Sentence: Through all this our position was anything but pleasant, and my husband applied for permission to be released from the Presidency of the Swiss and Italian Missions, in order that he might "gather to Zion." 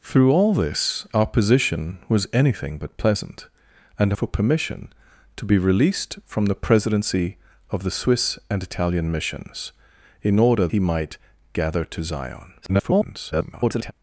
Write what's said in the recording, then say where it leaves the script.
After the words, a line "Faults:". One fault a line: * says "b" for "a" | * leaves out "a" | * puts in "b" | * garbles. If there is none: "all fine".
Through all this our position was anything but pleasant, and for permission to be released from the Presidency of the Swiss and Italian Missions, in order he might "gather to Zion." [garbled]
Faults:
* leaves out "my husband applied"
* leaves out "that"
* garbles